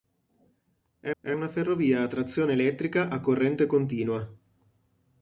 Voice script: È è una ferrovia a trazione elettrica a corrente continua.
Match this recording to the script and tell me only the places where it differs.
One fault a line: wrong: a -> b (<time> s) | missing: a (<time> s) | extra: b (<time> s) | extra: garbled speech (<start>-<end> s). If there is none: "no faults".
no faults